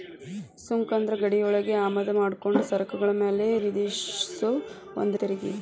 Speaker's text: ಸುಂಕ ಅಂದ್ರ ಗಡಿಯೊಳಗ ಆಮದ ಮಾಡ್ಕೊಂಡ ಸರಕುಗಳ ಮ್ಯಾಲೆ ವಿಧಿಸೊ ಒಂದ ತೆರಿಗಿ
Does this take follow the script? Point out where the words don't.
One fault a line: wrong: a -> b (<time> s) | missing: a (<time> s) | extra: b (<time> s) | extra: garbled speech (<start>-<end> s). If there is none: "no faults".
no faults